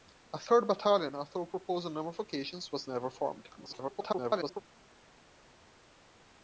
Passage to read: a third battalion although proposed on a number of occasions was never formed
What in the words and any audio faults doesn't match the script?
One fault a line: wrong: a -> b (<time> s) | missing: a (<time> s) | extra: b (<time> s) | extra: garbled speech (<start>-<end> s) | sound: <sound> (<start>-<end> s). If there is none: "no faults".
extra: garbled speech (3.6-4.6 s)